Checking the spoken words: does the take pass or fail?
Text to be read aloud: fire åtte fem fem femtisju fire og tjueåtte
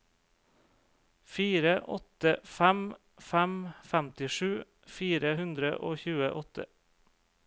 fail